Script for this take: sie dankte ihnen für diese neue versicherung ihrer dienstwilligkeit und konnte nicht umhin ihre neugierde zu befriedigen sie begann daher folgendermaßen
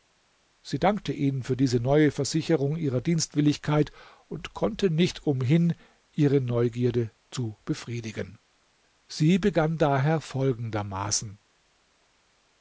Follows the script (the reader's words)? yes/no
yes